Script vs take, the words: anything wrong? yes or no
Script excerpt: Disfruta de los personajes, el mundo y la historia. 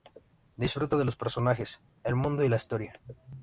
no